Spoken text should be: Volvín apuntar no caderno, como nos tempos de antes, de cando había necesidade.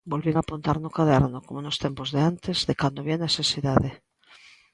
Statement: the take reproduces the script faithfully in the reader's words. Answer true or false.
true